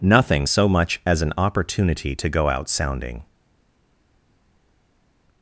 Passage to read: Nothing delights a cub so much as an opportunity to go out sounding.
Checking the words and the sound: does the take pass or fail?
fail